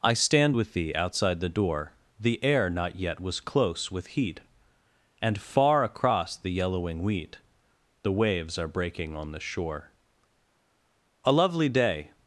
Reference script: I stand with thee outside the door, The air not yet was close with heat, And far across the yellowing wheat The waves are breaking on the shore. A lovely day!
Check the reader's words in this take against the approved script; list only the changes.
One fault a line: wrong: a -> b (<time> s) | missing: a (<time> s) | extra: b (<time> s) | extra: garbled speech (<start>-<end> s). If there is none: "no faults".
no faults